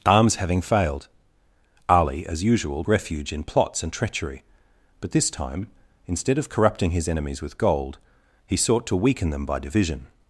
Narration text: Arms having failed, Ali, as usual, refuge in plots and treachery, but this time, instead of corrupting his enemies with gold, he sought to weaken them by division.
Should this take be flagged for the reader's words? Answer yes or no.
no